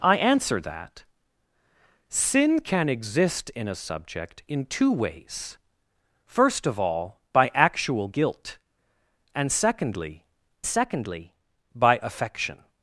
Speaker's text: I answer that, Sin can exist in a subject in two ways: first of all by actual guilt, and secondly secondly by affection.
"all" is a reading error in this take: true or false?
false